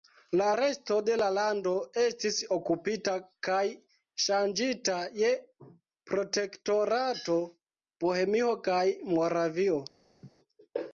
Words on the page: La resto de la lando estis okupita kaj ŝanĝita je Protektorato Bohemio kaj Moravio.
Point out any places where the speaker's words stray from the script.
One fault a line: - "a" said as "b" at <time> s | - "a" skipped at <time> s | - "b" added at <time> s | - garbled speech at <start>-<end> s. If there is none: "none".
none